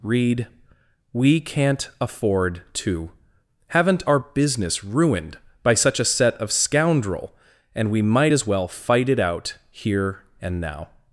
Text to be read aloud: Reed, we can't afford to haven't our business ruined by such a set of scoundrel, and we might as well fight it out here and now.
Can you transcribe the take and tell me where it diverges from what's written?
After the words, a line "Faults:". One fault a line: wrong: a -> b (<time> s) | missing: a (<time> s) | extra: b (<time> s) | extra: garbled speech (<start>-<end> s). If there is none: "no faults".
Reed, we can't afford to haven't our business ruined by such a set of scoundrel, and we might as well fight it out here and now.
Faults:
no faults